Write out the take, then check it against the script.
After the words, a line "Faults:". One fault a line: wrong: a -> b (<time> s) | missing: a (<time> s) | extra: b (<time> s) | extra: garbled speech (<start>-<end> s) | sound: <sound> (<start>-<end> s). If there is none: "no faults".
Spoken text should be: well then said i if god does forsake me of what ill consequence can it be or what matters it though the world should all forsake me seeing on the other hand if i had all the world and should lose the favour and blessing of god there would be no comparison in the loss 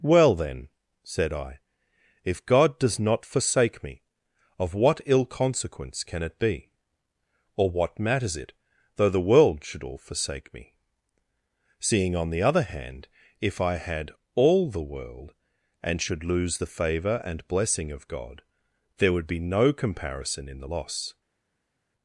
well then said i if god does not forsake me of what ill consequence can it be or what matters it though the world should all forsake me seeing on the other hand if i had all the world and should lose the favour and blessing of god there would be no comparison in the loss
Faults:
extra: not (3.0 s)